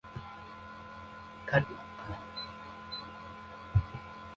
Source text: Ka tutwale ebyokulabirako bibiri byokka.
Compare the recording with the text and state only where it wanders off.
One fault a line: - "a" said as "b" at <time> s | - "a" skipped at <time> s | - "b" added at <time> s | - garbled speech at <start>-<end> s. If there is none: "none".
- "tutwale ebyokulabirako bibiri" skipped at 1.6 s